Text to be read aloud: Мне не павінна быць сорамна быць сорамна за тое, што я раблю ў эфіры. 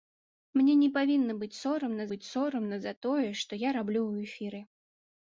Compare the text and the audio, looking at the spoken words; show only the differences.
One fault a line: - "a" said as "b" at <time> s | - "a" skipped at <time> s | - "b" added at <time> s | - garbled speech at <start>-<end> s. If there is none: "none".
none